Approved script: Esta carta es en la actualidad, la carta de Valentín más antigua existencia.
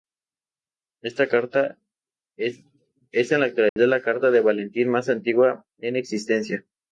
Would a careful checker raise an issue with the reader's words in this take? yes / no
yes